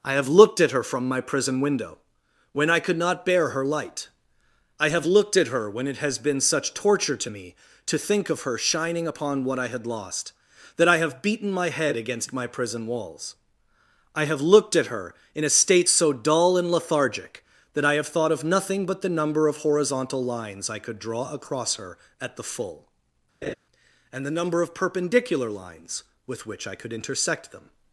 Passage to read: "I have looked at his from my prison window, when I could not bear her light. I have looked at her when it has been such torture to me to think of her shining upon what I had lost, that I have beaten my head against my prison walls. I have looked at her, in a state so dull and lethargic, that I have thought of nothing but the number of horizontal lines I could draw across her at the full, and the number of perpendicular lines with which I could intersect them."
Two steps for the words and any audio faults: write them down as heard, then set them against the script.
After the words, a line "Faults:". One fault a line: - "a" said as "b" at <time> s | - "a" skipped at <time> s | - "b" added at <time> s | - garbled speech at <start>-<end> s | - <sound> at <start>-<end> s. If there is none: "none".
"I have looked at her from my prison window, when I could not bear her light. I have looked at her when it has been such torture to me to think of her shining upon what I had lost, that I have beaten my head against my prison walls. I have looked at her, in a state so dull and lethargic, that I have thought of nothing but the number of horizontal lines I could draw across her at the full, and the number of perpendicular lines with which I could intersect them."
Faults:
- "his" said as "her" at 0.7 s
- laugh at 23.4-23.5 s